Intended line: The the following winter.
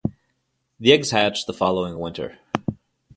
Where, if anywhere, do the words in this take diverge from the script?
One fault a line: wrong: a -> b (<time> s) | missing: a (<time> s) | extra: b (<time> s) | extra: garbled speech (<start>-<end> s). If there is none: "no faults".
extra: eggs hatch (0.9 s)